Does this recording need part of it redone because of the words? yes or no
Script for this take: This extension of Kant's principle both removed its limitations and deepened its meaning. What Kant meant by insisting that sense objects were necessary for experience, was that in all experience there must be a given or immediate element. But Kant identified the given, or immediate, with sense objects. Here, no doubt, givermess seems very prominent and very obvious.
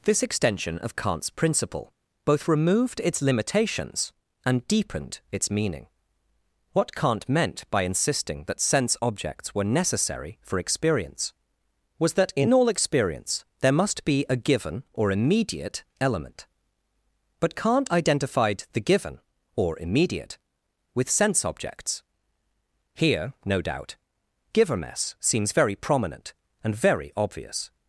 no